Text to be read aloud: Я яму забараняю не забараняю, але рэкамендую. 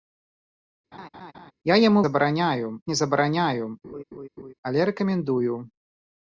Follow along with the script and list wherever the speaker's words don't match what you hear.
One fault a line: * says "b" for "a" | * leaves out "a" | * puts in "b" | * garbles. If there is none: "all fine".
all fine